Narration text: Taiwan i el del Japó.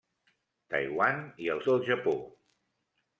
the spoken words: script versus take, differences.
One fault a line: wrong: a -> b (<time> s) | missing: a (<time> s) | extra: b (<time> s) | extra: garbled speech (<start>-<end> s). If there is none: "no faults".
no faults